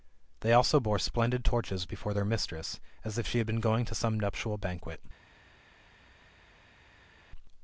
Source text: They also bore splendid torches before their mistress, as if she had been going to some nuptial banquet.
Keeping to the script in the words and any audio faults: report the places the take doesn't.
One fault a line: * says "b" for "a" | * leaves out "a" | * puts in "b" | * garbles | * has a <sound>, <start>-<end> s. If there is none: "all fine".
all fine